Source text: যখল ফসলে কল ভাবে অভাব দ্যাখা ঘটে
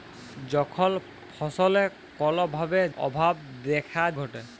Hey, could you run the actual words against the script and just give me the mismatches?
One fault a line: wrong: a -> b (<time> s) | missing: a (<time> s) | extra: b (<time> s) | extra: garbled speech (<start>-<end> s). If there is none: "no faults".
no faults